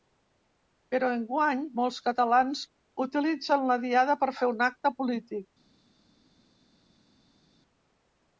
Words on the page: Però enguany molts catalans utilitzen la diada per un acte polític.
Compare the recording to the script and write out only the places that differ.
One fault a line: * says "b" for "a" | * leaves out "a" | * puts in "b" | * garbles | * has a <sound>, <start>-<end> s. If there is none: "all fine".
* puts in "fer"